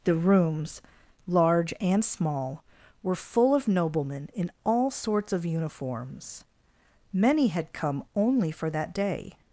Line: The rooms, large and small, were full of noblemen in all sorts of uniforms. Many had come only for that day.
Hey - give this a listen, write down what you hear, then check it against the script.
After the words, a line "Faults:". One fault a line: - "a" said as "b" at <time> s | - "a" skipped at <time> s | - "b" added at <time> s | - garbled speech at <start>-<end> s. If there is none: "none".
The rooms, large and small, were full of noblemen in all sorts of uniforms. Many had come only for that day.
Faults:
none